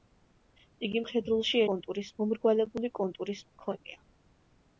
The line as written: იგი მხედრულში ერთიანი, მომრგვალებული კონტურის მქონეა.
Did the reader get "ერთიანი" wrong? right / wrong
wrong